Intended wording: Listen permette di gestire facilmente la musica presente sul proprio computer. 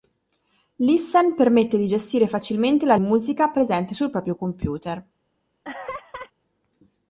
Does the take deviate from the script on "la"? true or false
false